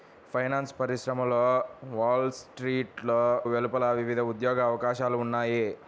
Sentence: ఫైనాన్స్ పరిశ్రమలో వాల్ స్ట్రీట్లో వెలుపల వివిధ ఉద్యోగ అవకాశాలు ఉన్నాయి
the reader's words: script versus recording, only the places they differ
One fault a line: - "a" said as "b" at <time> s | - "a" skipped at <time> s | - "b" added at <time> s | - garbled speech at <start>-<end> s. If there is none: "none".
none